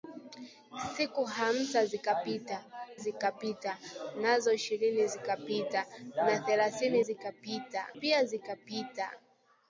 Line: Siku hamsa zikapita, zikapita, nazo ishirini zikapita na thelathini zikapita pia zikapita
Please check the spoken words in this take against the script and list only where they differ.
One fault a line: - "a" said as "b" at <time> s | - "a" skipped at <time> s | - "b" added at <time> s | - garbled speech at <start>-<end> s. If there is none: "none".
none